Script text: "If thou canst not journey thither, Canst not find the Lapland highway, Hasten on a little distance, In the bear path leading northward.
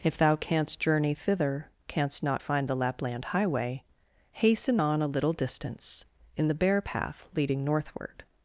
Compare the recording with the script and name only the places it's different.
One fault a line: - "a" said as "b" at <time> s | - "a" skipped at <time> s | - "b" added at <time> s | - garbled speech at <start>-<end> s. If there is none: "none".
- "not" skipped at 0.8 s